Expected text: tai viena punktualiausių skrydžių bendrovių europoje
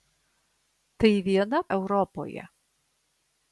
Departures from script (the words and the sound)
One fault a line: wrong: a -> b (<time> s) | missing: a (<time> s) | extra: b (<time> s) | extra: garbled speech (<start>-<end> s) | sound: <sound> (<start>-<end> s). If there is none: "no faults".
missing: punktualiausių skrydžių bendrovių (1.6 s)